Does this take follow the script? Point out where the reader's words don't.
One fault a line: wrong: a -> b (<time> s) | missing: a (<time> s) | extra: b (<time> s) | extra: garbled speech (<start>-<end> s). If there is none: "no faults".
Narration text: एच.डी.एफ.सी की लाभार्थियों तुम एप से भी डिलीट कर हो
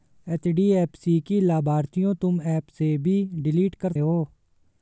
no faults